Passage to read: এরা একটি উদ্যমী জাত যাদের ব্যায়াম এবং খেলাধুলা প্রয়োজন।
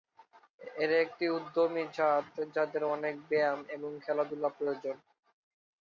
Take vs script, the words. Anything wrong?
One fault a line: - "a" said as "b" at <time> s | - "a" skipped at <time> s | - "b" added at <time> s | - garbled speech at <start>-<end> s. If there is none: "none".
- "অনেক" added at 2.9 s